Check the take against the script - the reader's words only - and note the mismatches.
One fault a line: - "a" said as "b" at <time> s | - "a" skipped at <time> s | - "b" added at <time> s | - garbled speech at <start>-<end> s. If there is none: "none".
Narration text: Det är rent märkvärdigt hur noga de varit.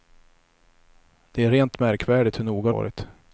- "de" skipped at 2.7 s